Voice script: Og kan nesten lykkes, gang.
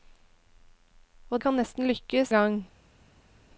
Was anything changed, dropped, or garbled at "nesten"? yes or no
no